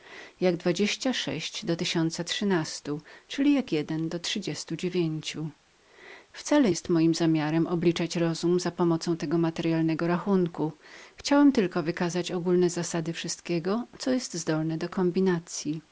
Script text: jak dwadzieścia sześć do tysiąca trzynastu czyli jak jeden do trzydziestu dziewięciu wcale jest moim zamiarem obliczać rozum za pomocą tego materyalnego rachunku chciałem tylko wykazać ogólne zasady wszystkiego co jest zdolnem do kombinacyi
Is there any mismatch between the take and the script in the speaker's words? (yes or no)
no